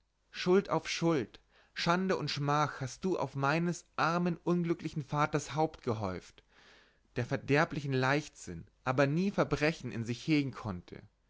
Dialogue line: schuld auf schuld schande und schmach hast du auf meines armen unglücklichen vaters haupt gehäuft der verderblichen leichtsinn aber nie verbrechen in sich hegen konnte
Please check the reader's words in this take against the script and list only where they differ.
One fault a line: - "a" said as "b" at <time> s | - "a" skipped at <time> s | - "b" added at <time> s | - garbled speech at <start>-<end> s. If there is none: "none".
none